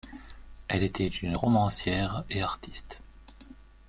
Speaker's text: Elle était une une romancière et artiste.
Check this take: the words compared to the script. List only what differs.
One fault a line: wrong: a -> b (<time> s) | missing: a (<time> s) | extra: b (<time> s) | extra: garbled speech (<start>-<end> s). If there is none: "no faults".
missing: une (1.4 s)